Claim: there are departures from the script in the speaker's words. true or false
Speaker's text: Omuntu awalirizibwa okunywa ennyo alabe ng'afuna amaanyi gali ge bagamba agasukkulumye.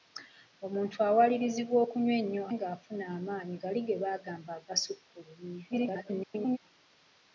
true